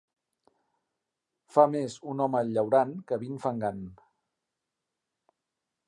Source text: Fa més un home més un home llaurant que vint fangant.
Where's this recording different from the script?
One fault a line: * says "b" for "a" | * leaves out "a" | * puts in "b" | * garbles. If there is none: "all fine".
* leaves out "més un home"